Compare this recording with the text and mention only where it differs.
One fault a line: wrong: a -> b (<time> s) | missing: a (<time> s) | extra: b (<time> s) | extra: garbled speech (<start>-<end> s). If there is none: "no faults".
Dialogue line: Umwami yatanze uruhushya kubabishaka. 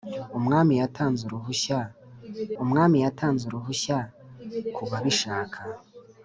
extra: umwami yatanze uruhushya (2.6 s)